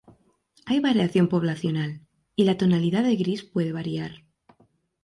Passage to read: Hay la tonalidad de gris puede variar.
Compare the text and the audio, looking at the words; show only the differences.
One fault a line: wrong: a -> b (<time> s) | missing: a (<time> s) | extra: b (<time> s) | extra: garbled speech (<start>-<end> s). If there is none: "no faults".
extra: variación poblacional y (0.8 s)